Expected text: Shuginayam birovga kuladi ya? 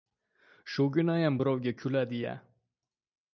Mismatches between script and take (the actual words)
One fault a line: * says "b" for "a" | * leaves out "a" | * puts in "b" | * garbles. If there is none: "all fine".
all fine